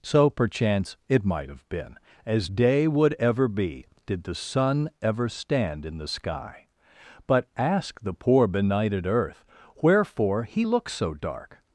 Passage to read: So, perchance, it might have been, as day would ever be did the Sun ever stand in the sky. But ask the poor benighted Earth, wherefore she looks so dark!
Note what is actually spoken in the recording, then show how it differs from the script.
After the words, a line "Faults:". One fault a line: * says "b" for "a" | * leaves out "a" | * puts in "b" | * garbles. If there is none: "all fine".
So, perchance, it might have been, as day would ever be did the Sun ever stand in the sky. But ask the poor benighted Earth, wherefore he looks so dark!
Faults:
* says "he" for "she"